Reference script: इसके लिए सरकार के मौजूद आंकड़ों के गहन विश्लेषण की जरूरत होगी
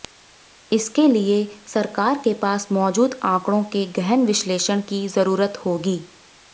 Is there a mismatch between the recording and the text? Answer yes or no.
yes